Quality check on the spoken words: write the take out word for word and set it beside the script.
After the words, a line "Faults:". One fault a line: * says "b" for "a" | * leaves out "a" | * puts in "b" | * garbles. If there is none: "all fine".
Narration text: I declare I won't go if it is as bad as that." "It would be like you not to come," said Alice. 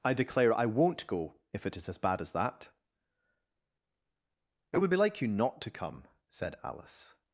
I declare I won't go if it is as bad as that." "It would be like you not to come," said Alice.
Faults:
all fine